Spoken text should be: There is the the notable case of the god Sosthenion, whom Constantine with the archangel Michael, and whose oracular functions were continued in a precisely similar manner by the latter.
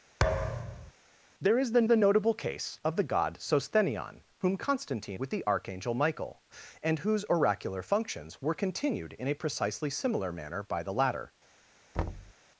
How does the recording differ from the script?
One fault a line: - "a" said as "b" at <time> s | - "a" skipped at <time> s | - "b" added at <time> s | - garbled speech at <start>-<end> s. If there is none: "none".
none